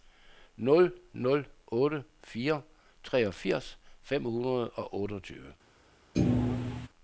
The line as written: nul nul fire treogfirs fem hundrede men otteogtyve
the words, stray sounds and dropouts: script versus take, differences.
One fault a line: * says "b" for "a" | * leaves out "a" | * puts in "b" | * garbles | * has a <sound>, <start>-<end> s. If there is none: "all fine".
* puts in "otte"
* says "og" for "men"
* has a thud, 6.1-6.9 s